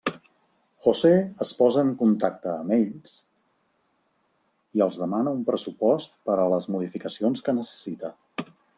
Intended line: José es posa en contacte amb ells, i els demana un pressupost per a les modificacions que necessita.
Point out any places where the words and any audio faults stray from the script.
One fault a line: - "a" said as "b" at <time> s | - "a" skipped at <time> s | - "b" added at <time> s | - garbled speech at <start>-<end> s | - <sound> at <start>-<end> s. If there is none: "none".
none